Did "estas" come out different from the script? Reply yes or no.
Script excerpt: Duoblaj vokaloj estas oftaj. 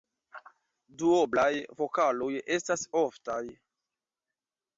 no